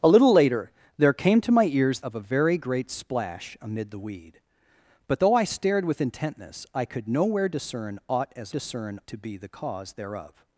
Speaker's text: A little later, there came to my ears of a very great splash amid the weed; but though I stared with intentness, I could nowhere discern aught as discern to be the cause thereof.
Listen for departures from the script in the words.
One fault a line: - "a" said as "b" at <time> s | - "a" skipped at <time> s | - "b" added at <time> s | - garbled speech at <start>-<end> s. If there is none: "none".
none